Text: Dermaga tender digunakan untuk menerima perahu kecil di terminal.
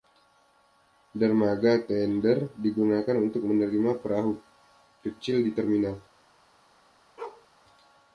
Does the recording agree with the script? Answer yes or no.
yes